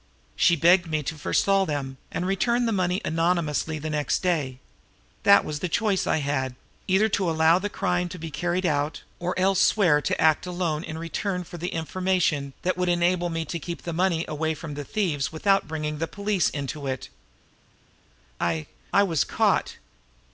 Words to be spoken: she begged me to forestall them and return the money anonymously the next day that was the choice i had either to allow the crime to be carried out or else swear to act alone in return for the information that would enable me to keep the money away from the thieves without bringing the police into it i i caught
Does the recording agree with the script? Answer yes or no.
no